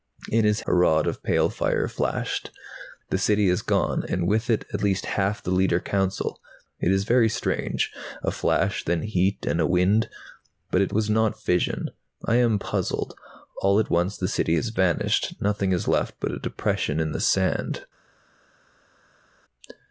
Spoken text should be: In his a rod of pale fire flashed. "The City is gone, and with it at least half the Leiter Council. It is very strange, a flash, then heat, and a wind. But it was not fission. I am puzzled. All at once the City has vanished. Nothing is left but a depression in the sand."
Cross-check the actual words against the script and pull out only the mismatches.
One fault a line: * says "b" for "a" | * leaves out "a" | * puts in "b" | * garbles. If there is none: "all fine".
all fine